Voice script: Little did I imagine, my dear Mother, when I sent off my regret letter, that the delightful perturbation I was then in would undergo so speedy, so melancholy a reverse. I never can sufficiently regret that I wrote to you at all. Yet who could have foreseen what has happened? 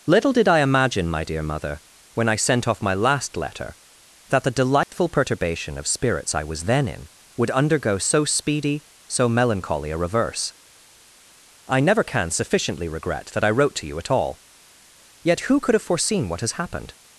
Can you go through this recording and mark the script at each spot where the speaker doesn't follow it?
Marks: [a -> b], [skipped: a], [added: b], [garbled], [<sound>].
Little did I imagine, my dear Mother, when I sent off my [regret -> last] letter, that the delightful [dropout] perturbation [added: of spirits] I was then in would undergo so speedy, so melancholy a reverse. I never can sufficiently regret that I wrote to you at all. Yet who could have foreseen what has happened?